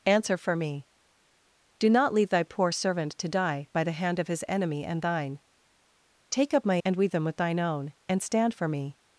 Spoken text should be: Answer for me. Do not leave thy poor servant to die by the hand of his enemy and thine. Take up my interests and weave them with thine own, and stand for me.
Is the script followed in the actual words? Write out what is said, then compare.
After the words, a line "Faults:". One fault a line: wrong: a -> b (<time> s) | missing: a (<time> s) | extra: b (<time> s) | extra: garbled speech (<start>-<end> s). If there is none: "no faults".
Answer for me. Do not leave thy poor servant to die by the hand of his enemy and thine. Take up my and weave them with thine own, and stand for me.
Faults:
missing: interests (6.8 s)